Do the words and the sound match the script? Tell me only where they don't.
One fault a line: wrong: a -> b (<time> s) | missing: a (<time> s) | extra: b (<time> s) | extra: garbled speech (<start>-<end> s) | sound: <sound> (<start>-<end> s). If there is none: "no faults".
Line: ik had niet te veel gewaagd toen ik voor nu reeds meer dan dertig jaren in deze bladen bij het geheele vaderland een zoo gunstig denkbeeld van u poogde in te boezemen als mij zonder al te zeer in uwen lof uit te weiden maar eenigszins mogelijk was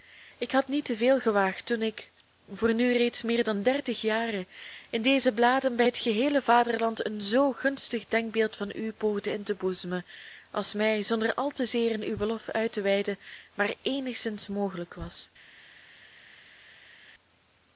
no faults